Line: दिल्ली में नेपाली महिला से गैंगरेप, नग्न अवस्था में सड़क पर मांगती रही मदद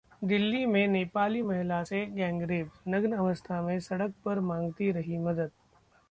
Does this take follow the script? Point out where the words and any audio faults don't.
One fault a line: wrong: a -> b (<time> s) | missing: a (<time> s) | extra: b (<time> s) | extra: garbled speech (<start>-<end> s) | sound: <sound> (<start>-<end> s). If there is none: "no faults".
no faults